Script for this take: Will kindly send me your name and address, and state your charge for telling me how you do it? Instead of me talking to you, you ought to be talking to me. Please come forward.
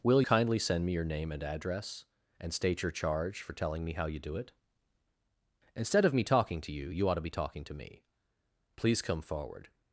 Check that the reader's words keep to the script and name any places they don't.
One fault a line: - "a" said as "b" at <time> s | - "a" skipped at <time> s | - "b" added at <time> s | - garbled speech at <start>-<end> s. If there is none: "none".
none